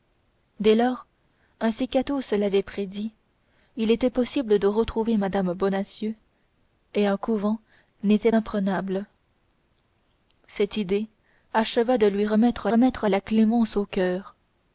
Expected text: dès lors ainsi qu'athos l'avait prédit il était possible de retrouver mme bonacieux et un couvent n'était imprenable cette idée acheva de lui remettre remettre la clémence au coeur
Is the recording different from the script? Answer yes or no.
no